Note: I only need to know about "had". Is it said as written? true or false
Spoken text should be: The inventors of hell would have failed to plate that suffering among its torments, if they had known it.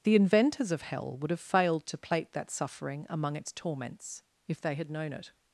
true